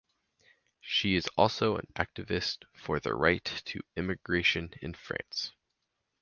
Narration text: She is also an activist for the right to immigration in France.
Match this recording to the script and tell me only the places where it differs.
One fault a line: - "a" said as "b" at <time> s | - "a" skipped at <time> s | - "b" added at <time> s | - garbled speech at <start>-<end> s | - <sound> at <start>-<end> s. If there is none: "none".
none